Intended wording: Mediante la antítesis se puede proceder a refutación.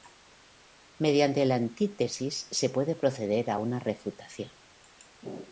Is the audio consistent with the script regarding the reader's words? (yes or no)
no